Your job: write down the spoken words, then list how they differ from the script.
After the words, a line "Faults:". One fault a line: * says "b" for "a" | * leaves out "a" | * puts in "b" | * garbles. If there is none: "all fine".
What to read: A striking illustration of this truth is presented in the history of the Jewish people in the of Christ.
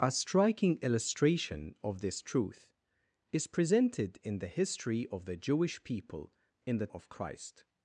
A striking illustration of this truth is presented in the history of the Jewish people in the of Christ.
Faults:
all fine